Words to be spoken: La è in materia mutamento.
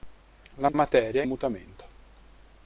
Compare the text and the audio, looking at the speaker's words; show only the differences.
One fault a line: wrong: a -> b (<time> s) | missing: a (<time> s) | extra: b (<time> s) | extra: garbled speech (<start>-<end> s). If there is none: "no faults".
no faults